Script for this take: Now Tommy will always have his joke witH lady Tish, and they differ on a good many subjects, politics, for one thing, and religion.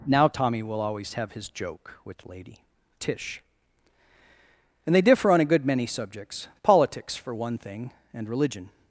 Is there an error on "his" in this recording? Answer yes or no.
no